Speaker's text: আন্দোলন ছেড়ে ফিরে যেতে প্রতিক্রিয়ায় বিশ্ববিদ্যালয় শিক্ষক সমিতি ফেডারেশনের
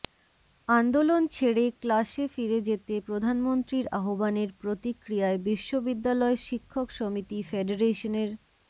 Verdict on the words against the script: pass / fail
fail